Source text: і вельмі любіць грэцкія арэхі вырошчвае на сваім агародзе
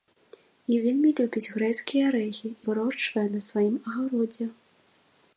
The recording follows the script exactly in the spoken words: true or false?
true